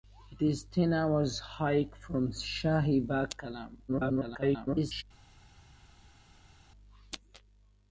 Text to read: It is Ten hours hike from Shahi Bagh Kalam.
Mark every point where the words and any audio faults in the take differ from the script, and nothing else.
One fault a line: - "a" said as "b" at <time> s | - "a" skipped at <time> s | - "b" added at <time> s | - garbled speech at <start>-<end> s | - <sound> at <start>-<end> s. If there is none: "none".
- garbled speech at 3.9-5.0 s